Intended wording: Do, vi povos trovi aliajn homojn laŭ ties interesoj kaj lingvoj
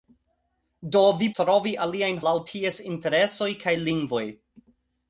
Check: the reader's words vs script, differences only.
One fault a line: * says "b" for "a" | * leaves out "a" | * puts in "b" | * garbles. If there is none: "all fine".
* leaves out "povos"
* leaves out "homojn"